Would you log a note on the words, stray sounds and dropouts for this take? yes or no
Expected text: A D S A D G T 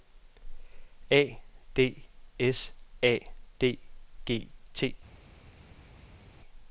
no